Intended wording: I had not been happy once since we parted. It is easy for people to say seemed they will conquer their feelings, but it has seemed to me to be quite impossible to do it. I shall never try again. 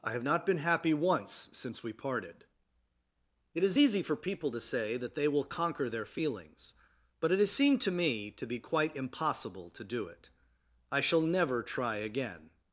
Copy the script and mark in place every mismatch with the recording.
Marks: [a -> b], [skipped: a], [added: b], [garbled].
I [had -> have] not been happy once since we parted. It is easy for people to say [seemed -> that] they will conquer their feelings, but it has seemed to me to be quite impossible to do it. I shall never try again.